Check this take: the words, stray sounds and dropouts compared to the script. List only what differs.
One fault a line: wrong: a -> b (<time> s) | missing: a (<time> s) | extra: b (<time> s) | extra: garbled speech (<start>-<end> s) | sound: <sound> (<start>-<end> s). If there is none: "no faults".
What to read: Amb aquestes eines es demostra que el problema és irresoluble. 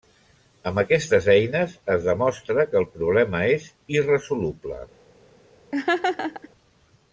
sound: laugh (5.7-6.5 s)